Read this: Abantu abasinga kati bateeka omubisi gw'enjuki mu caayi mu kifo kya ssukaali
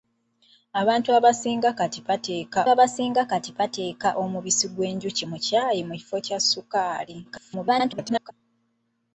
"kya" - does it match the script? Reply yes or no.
yes